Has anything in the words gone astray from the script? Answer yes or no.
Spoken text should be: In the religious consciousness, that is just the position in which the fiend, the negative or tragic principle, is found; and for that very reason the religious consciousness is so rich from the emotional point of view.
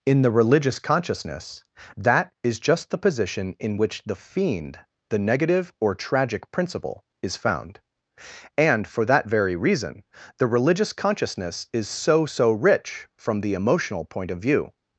yes